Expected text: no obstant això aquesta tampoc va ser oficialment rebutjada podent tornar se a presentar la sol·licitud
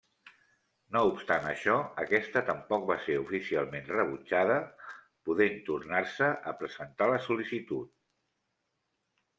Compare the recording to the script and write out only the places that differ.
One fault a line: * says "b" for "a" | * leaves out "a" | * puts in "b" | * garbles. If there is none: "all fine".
all fine